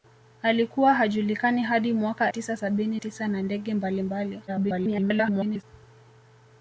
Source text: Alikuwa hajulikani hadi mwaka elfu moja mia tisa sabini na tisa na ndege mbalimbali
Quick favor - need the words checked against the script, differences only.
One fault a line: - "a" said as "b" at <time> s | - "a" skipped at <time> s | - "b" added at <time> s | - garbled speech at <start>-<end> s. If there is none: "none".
- "elfu moja mia" skipped at 2.3 s
- "na" skipped at 3.0 s
- garbled speech at 4.5-5.6 s